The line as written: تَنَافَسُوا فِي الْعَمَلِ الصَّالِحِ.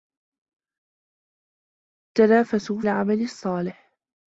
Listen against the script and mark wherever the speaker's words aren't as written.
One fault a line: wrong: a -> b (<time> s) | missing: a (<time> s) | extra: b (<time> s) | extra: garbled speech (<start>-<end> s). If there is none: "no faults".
missing: فِي (2.8 s)